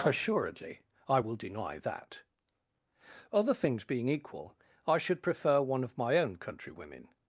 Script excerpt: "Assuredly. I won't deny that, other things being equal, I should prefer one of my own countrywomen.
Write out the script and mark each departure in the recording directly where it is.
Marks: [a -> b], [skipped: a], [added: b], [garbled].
"Assuredly. I [won't -> will] deny that, other things being equal, I should prefer one of my own countrywomen.